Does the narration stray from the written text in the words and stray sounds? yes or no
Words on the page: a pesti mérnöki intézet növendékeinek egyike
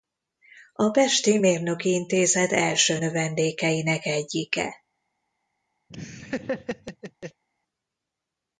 yes